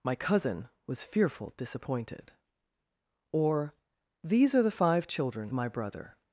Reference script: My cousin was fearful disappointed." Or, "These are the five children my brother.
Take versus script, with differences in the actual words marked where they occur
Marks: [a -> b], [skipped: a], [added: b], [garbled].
My cousin was fearful disappointed." Or, "These are the five children my brother.